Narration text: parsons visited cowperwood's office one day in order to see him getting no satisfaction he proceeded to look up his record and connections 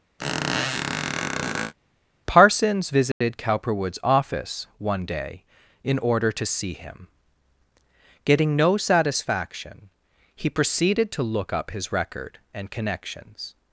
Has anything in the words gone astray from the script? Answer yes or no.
no